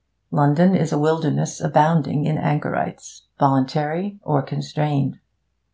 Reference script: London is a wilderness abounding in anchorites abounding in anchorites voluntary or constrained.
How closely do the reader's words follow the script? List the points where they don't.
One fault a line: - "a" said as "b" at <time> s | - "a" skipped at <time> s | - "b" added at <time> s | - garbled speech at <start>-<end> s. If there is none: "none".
- "abounding in anchorites" skipped at 3.2 s